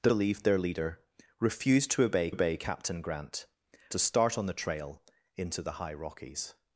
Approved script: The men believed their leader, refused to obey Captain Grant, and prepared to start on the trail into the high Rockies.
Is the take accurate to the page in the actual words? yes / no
no